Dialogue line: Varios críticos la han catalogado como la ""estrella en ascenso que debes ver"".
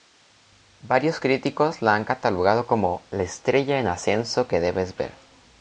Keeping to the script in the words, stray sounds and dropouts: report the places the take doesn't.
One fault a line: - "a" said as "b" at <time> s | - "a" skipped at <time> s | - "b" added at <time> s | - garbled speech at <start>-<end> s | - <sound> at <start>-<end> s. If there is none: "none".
none